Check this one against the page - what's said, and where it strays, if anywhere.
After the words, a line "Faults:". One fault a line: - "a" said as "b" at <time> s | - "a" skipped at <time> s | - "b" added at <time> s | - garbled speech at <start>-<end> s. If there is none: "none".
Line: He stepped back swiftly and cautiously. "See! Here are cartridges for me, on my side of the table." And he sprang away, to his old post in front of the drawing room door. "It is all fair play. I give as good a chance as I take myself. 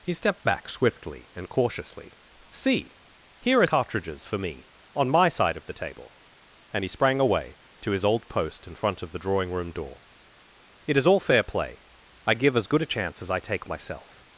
He stepped back swiftly and cautiously. "See! Here are cartridges for me, on my side of the table." And he sprang away, to his old post in front of the drawing room door. "It is all fair play. I give as good a chance as I take myself.
Faults:
none